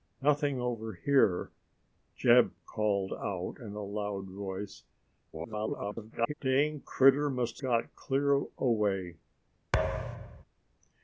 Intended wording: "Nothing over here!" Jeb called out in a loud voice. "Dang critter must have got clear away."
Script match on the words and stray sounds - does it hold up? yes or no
no